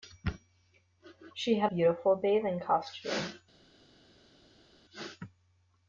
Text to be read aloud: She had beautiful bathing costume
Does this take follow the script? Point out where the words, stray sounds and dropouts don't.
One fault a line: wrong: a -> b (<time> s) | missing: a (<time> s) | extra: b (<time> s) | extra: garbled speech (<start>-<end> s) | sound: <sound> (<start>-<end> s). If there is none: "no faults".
no faults